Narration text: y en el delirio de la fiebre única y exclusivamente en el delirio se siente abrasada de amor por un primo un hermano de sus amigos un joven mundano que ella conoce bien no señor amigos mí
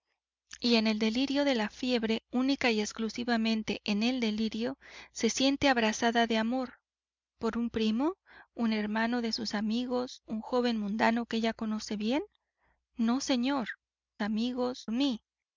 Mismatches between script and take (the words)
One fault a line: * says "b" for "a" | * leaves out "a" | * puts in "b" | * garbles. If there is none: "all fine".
all fine